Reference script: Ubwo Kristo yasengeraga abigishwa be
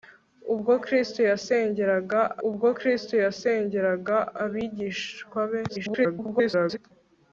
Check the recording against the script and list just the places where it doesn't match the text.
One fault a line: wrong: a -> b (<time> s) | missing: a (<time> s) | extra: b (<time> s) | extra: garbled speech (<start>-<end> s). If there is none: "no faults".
extra: ubwo Kristo yasengeraga (2.5 s)
extra: garbled speech (5.7-6.8 s)